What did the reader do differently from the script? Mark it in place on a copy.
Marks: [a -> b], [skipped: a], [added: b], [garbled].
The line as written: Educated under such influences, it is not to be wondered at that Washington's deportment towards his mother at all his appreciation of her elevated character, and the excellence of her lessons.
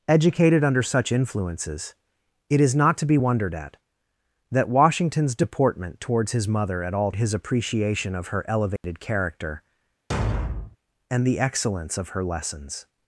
Educated under such influences, it is not to be wondered at that Washington's deportment towards his mother at all his appreciation of her elevated character, and the excellence of her lessons.